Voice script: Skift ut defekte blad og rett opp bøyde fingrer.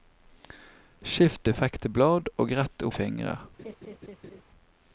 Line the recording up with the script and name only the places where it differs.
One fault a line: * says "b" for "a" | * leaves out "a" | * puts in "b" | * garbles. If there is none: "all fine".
* leaves out "ut"
* leaves out "opp bøyde"